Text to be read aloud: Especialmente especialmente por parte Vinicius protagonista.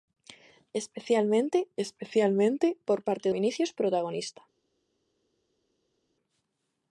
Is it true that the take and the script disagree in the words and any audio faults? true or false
false